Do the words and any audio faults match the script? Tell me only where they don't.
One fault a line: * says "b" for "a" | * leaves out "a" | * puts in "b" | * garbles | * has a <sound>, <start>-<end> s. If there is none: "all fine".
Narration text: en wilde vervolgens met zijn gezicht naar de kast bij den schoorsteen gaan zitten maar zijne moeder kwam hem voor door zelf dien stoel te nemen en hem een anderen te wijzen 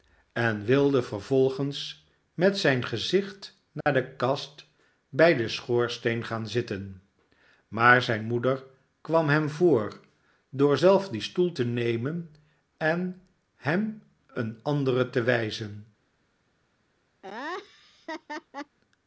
* has a dropout, 3.8-3.9 s
* has a laugh, 17.2-18.8 s